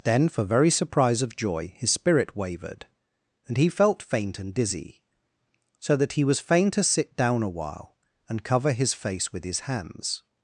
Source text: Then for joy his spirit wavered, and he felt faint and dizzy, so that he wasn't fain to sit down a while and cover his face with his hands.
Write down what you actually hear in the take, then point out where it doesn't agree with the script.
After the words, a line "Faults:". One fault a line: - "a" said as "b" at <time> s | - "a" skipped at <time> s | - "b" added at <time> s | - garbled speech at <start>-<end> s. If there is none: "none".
Then for very surprise of joy his spirit wavered, and he felt faint and dizzy, so that he was fain to sit down a while and cover his face with his hands.
Faults:
- "very surprise of" added at 0.4 s
- "wasn't" said as "was" at 6.2 s